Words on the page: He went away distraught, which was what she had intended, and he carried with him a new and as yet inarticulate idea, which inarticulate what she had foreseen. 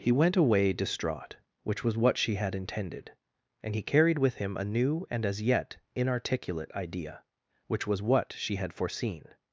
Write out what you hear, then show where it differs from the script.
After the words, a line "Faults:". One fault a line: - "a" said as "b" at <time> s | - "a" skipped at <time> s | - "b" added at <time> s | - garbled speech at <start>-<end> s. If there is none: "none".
He went away distraught, which was what she had intended, and he carried with him a new and as yet inarticulate idea, which was what she had foreseen.
Faults:
- "inarticulate" said as "was" at 7.8 s